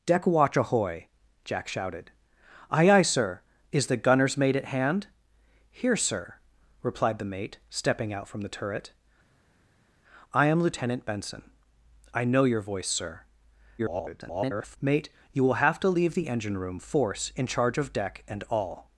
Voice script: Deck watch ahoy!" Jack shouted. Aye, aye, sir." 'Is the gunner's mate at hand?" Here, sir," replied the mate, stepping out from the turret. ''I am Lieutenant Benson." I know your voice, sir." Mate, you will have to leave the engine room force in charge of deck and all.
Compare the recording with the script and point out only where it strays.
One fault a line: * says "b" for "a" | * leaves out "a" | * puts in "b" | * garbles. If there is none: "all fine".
* garbles